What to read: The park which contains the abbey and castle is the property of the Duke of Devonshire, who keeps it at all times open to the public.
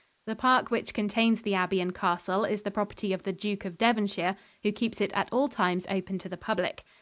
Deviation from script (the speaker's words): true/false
false